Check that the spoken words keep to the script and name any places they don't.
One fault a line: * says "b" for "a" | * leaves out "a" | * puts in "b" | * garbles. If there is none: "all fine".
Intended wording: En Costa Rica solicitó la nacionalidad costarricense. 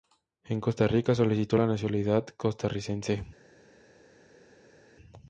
all fine